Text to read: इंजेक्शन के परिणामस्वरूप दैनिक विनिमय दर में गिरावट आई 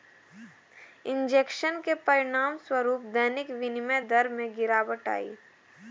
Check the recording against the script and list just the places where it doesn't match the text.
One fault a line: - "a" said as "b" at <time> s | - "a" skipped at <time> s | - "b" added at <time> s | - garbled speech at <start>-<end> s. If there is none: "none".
none